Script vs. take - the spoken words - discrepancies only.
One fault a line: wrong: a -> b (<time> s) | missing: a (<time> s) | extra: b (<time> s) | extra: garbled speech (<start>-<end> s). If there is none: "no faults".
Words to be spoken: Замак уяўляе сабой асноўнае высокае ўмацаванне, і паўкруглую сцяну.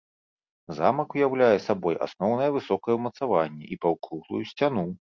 no faults